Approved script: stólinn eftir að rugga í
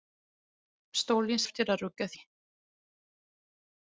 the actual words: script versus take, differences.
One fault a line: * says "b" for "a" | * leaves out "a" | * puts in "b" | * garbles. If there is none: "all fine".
all fine